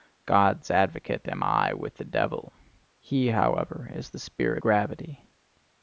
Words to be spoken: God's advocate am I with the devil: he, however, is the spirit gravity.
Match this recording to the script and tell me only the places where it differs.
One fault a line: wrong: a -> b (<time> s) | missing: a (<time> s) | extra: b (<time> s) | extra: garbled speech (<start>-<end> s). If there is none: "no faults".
no faults